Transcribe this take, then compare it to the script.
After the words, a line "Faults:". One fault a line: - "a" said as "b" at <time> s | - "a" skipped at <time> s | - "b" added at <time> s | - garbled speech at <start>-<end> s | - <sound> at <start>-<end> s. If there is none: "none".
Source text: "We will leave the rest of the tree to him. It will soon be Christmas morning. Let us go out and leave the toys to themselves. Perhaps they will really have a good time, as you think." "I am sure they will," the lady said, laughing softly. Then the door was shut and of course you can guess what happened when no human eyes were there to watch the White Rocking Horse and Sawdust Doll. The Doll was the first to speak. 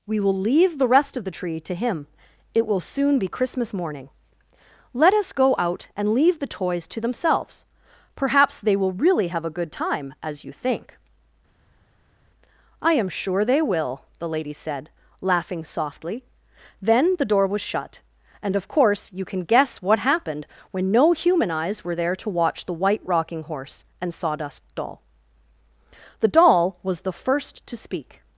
"We will leave the rest of the tree to him. It will soon be Christmas morning. Let us go out and leave the toys to themselves. Perhaps they will really have a good time, as you think." "I am sure they will," the lady said, laughing softly. Then the door was shut and of course you can guess what happened when no human eyes were there to watch the White Rocking Horse and Sawdust Doll. The Doll was the first to speak.
Faults:
none